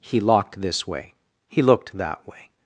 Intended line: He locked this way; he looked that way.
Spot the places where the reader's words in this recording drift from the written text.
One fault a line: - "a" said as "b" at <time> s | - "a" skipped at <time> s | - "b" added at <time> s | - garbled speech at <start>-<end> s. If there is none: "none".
none